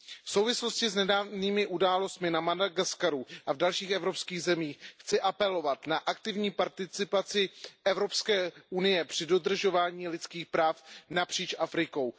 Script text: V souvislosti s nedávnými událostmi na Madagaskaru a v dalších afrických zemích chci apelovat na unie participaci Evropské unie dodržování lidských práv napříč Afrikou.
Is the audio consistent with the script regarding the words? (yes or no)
no